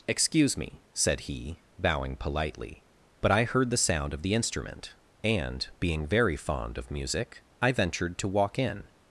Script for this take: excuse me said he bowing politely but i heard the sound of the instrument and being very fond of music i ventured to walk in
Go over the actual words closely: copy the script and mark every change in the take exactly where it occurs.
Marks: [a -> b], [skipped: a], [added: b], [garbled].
excuse me said he bowing politely but i heard the sound of the instrument and being very fond of music i ventured to walk in